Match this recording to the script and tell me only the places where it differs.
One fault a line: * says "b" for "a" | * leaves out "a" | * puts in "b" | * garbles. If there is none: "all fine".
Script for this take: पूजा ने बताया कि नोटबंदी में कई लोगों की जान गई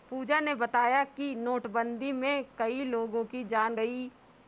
all fine